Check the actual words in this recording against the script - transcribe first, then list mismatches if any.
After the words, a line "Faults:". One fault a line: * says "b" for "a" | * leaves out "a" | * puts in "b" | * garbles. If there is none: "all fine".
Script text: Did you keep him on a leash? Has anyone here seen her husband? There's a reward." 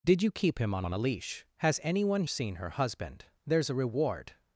Did you keep him on on a leash? Has anyone seen her husband? There's a reward."
Faults:
* puts in "on"
* leaves out "here"